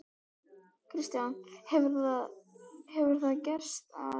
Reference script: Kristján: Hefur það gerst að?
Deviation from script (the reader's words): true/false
false